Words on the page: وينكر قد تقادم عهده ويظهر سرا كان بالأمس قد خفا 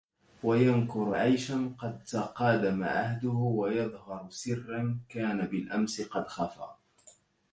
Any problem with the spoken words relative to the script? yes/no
yes